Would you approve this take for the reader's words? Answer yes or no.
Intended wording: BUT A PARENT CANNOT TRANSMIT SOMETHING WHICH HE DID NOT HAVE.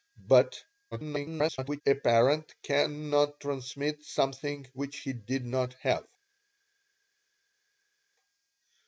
no